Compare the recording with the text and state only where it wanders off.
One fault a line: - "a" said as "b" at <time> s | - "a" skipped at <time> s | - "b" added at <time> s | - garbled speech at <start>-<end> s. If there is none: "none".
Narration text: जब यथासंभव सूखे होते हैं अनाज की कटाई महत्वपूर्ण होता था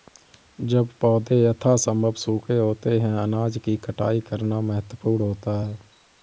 - "पौधे" added at 1.0 s
- "करना" added at 4.3 s
- "था" said as "है" at 5.6 s